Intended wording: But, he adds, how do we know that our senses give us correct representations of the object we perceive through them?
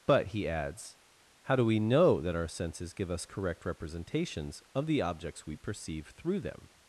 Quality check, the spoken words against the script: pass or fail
fail